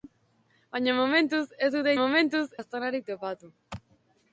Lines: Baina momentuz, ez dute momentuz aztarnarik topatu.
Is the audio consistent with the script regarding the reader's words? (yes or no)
yes